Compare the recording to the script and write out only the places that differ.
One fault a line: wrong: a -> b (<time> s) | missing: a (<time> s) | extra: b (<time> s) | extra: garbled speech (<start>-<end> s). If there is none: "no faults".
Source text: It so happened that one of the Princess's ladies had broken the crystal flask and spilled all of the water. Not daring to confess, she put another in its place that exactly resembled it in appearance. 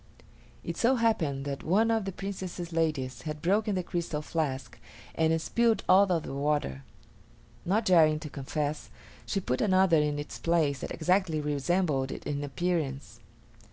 no faults